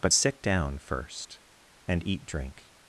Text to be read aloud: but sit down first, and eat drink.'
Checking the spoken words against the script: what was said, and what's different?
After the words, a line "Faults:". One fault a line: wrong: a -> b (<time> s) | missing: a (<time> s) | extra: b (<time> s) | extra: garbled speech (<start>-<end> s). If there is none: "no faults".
but sit down first, and eat drink.'
Faults:
no faults